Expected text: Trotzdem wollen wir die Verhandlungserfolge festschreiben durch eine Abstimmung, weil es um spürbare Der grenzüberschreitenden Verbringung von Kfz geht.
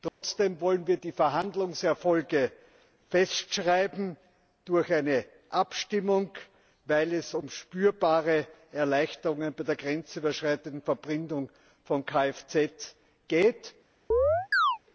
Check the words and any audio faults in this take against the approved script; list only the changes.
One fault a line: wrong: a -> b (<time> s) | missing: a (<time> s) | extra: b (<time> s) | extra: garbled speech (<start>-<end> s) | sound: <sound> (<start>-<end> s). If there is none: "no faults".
sound: dropout (0.1-0.2 s)
extra: Erleichterungen bei (8.7 s)
sound: chirp (14.1-14.8 s)